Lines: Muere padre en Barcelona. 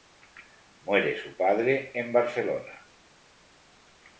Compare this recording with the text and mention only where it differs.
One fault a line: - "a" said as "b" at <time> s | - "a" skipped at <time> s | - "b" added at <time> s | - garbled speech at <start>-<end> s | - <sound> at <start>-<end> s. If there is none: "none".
- "su" added at 1.1 s